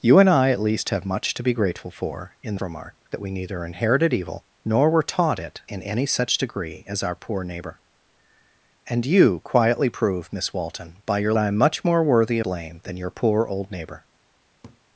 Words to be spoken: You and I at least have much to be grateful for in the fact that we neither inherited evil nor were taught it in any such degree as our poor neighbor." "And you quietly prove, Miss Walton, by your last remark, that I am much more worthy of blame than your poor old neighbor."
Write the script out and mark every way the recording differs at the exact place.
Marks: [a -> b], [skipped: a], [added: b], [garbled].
You and I at least have much to be grateful for in the [fact -> remark] that we neither inherited evil nor were taught it in any such degree as our poor neighbor." "And you quietly prove, Miss Walton, by your [skipped: last remark, that] I am much more worthy [skipped: of] blame than your poor old neighbor."